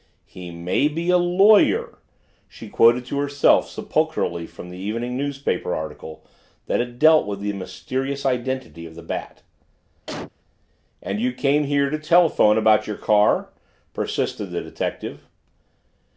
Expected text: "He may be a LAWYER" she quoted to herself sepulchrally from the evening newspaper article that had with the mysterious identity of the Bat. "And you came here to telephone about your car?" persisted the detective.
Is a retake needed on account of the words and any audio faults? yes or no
yes